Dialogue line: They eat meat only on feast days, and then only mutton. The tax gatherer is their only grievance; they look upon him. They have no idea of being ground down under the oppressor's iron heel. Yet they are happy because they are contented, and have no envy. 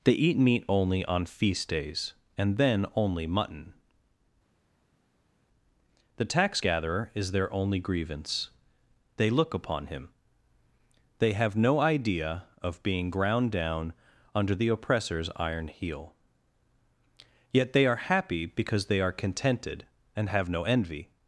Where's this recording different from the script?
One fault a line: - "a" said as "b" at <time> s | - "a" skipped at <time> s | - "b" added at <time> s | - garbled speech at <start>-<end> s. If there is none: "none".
none